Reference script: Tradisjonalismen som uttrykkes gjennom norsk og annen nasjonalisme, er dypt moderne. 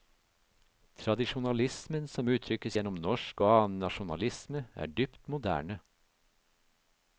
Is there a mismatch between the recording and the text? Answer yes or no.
no